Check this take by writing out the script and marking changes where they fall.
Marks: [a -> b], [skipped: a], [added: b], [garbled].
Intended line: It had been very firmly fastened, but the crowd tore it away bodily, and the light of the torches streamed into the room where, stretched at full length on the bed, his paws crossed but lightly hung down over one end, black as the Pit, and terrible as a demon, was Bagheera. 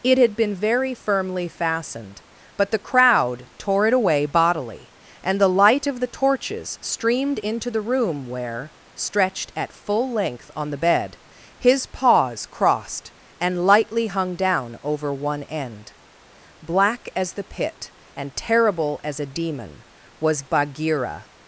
It had been very firmly fastened, but the crowd tore it away bodily, and the light of the torches streamed into the room where, stretched at full length on the bed, his paws crossed [but -> and] lightly hung down over one end, black as the Pit, and terrible as a demon, was Bagheera.